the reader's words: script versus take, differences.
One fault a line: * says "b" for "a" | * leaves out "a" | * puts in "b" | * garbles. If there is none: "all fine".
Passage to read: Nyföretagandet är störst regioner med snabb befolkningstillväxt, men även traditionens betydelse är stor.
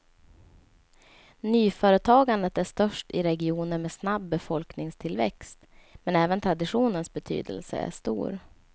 * puts in "i"